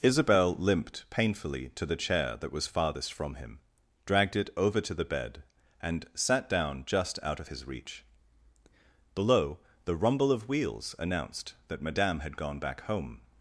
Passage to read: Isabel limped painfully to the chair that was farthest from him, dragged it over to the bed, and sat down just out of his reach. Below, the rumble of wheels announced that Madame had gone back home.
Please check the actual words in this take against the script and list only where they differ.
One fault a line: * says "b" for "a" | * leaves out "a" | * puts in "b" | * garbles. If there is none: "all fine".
all fine